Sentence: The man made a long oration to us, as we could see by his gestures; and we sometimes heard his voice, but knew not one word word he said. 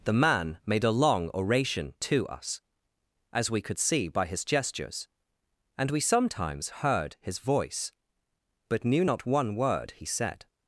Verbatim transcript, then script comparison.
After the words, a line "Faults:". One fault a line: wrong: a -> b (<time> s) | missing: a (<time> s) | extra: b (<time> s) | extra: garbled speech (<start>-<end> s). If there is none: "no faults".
The man made a long oration to us, as we could see by his gestures; and we sometimes heard his voice, but knew not one word he said.
Faults:
missing: word (9.9 s)